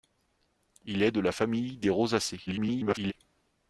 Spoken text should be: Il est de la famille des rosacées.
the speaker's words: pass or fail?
fail